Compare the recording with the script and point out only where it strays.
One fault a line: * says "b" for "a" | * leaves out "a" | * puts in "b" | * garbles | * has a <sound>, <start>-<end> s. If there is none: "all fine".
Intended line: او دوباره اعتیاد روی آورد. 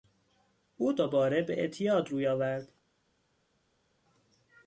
* puts in "به"